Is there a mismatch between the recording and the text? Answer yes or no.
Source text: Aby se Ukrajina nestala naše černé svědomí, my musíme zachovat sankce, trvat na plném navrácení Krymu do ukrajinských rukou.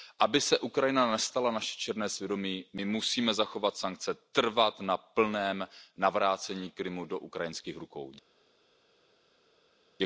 no